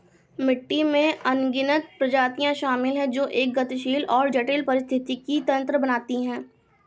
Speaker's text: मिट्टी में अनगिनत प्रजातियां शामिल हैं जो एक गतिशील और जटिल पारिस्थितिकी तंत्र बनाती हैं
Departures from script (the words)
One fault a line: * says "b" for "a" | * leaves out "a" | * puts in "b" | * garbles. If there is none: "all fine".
all fine